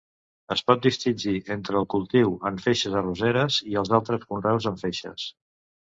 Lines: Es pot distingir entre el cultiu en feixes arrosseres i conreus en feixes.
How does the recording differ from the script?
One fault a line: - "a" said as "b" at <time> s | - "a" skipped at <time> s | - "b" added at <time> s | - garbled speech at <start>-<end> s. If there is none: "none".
- "els altres" added at 3.8 s